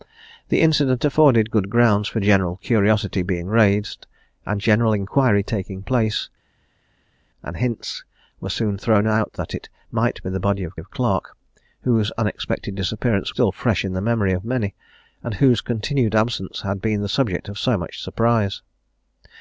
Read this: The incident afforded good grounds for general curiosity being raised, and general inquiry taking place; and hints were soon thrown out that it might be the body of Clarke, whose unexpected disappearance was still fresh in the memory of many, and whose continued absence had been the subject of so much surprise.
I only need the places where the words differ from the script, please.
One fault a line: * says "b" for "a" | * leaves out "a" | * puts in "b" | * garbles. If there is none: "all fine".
* puts in "of"
* leaves out "was"